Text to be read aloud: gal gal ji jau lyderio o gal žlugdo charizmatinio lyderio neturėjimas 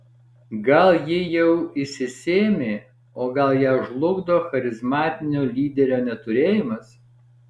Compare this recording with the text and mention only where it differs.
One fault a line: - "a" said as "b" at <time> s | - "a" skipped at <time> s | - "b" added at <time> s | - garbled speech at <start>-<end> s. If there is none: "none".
- "gal" skipped at 0.9 s
- "lyderio" said as "išsisėmė" at 1.8 s
- "ją" added at 3.6 s